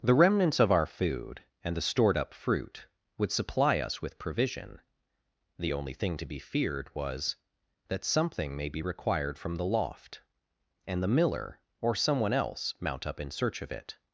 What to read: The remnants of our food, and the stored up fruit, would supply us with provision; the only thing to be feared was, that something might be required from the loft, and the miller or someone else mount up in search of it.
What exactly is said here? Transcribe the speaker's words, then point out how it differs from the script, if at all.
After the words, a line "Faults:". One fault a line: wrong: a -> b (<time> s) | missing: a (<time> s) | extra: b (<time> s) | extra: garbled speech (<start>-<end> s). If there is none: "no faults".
The remnants of our food, and the stored up fruit, would supply us with provision; the only thing to be feared was, that something may be required from the loft, and the miller or someone else mount up in search of it.
Faults:
wrong: might -> may (8.6 s)